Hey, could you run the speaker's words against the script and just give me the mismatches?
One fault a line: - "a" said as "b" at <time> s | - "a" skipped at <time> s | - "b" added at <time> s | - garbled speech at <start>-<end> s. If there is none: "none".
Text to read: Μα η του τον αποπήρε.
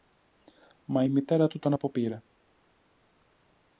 - "μητέρα" added at 1.1 s